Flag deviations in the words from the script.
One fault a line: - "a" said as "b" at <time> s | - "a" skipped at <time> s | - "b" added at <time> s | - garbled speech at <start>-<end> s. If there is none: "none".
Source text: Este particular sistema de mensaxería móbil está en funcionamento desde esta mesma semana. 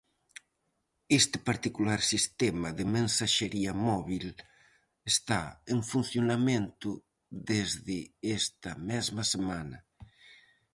none